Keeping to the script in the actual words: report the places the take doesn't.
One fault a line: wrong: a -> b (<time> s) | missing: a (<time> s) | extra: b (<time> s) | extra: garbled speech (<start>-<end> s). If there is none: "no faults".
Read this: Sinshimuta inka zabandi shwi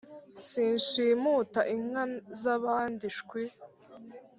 no faults